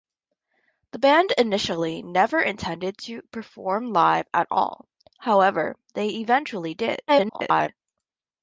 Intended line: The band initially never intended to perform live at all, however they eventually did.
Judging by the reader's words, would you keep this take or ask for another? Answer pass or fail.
fail